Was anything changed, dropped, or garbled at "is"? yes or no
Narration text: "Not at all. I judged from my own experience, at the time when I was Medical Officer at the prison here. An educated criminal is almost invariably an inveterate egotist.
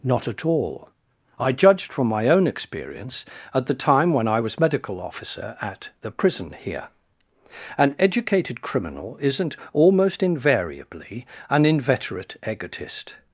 yes